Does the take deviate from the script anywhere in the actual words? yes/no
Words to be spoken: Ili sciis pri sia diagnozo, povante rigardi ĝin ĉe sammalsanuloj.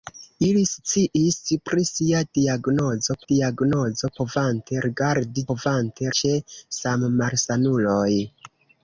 yes